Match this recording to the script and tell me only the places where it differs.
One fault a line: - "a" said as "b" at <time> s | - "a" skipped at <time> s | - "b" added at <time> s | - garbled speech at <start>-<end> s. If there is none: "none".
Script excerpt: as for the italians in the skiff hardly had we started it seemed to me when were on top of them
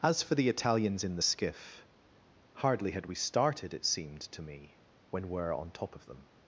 none